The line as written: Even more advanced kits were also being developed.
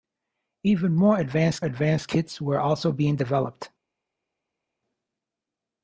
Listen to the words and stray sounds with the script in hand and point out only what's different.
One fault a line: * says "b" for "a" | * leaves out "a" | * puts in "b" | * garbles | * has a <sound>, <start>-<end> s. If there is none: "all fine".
* puts in "advanced"